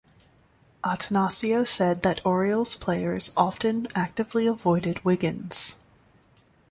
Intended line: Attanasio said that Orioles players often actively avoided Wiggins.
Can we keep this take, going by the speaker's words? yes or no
yes